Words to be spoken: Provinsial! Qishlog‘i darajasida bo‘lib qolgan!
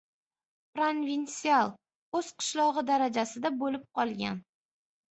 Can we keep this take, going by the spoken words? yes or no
no